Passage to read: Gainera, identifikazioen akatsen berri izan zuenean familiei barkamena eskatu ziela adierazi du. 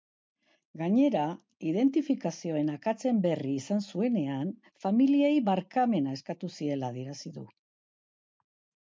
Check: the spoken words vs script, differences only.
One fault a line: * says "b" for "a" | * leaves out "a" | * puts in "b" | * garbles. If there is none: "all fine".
all fine